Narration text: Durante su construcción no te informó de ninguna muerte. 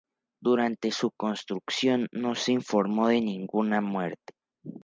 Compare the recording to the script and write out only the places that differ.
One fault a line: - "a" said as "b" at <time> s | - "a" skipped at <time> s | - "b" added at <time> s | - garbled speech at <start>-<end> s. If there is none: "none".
- "te" said as "se" at 2.3 s